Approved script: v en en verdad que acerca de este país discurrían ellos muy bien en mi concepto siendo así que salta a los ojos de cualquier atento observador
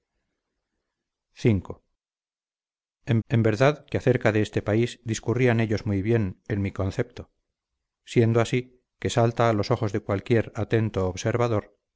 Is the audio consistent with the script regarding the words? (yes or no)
yes